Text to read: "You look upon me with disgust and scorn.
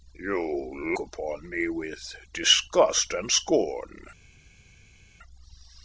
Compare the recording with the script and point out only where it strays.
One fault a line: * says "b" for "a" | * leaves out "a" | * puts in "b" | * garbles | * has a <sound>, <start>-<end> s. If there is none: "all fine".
* leaves out "look"